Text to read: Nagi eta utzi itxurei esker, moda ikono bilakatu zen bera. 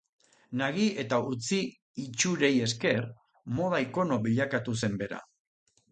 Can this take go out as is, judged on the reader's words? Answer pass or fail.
pass